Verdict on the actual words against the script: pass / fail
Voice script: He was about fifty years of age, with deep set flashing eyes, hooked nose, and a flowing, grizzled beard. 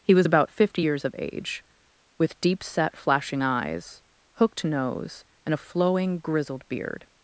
pass